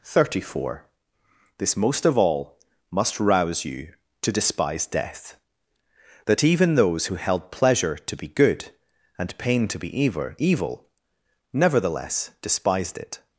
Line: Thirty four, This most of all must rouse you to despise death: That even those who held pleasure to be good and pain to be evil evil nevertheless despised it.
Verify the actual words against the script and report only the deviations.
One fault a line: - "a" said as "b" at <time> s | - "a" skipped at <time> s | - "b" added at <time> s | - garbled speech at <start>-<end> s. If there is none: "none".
none